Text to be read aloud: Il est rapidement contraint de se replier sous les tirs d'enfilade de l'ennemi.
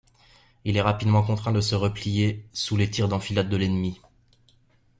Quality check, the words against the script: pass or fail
pass